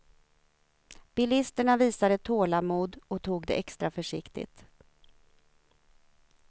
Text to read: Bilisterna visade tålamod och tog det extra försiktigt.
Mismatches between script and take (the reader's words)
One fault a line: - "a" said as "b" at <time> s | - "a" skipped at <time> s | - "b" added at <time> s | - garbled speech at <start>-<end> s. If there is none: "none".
none